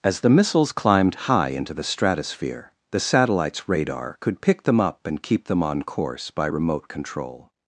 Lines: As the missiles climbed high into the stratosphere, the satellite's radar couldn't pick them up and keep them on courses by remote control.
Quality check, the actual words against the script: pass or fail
fail